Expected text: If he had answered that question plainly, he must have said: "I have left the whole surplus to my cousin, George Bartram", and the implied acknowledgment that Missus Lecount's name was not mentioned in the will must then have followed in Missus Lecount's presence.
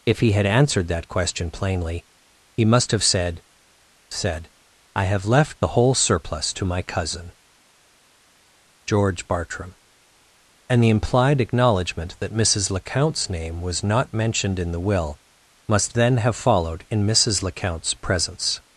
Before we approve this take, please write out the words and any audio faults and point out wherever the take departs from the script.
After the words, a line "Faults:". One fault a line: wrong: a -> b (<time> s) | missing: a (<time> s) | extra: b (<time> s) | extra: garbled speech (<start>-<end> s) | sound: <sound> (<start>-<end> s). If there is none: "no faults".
If he had answered that question plainly, he must have said said: "I have left the whole surplus to my cousin, George Bartram", and the implied acknowledgment that Missus Lecount's name was not mentioned in the will must then have followed in Missus Lecount's presence.
Faults:
extra: said (4.1 s)